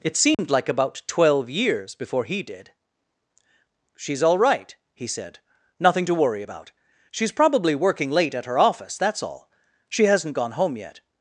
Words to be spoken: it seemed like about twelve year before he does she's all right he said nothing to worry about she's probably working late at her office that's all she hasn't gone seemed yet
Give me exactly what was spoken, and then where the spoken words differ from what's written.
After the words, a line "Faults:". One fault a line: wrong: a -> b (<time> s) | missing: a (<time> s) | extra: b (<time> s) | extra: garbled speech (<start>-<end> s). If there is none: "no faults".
it seemed like about twelve years before he did she's all right he said nothing to worry about she's probably working late at her office that's all she hasn't gone home yet
Faults:
wrong: year -> years (1.5 s)
wrong: does -> did (2.4 s)
wrong: seemed -> home (10.5 s)